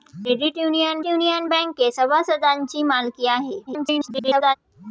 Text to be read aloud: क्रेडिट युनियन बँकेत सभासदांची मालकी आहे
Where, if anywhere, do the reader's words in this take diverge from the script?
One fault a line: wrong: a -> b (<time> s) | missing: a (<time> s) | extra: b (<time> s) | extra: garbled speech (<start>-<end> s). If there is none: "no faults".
extra: युनियन (1.0 s)
extra: garbled speech (3.7-4.6 s)